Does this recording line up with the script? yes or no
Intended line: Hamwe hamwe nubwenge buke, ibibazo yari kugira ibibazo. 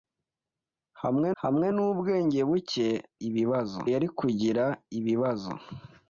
yes